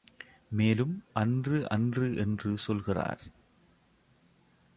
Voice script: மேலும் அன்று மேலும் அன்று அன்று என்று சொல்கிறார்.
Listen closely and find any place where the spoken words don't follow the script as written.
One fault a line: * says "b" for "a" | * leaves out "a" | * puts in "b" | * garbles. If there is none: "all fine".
* leaves out "மேலும் அன்று"